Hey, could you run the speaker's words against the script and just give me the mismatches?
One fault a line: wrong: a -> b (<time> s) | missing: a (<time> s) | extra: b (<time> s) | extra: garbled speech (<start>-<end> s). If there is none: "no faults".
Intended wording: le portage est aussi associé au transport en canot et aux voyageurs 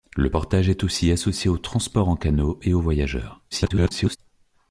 extra: garbled speech (3.5-4.2 s)